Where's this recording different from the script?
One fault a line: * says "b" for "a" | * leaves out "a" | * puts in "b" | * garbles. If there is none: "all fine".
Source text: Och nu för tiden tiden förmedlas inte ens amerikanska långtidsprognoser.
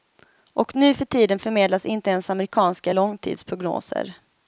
* leaves out "tiden"